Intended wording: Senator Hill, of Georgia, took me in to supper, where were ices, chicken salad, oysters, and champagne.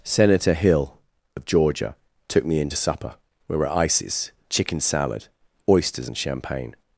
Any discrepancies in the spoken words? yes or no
yes